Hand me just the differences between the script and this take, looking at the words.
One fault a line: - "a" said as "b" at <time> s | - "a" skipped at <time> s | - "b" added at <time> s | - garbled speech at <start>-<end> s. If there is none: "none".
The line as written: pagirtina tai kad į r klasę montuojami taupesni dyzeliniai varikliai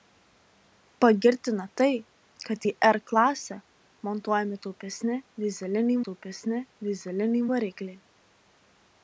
- "taupesni dyzeliniai" added at 6.1 s